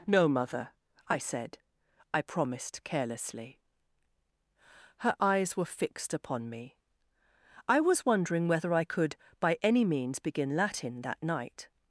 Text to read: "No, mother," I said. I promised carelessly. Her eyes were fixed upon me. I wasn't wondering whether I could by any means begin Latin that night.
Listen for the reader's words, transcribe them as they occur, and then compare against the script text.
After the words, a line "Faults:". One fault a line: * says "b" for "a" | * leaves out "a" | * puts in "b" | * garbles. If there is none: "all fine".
"No, mother," I said. I promised carelessly. Her eyes were fixed upon me. I was wondering whether I could by any means begin Latin that night.
Faults:
* says "was" for "wasn't"